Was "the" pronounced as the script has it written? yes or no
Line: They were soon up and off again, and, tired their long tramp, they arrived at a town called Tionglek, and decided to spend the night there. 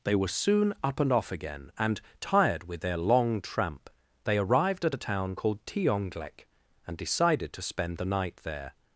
yes